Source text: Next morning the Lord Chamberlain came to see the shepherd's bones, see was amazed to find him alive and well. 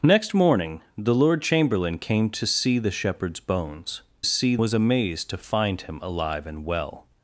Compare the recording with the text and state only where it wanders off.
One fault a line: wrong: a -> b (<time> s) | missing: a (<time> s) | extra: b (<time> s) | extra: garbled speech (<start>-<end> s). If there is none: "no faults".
no faults